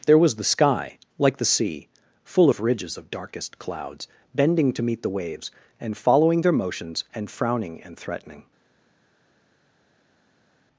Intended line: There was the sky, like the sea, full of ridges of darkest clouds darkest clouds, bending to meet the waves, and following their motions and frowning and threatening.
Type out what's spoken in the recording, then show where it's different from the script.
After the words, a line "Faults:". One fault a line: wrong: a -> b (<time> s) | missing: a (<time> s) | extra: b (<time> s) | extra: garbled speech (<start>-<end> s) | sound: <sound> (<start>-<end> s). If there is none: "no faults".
There was the sky, like the sea, full of ridges of darkest clouds, bending to meet the waves, and following their motions and frowning and threatening.
Faults:
missing: darkest clouds (4.1 s)